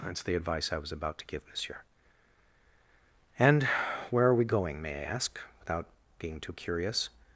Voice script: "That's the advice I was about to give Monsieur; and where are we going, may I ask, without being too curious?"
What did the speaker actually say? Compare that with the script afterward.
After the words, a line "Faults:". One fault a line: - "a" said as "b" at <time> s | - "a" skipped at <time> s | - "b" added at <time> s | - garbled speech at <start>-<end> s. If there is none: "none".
"That's the advice I was about to give Monsieur; and where are we going, may I ask, without being too curious?"
Faults:
none